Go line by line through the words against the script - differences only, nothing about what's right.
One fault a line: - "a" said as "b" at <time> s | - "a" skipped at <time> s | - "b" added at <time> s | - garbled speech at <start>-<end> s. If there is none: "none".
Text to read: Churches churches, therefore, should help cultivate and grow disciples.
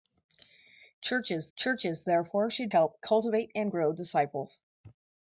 none